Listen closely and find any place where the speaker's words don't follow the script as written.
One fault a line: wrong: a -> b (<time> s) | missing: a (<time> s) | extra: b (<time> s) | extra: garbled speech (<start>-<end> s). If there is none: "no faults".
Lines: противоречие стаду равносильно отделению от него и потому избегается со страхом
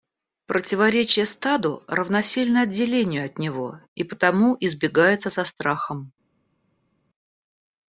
no faults